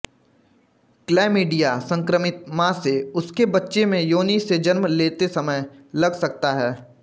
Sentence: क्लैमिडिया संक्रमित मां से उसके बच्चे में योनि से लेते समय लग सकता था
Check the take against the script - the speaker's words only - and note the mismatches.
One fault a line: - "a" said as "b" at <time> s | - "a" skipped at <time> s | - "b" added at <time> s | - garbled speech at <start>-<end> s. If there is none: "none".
- "जन्म" added at 4.6 s
- "था" said as "है" at 6.5 s